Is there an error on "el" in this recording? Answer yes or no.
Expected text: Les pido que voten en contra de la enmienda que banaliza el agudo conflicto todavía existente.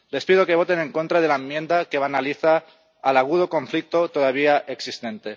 no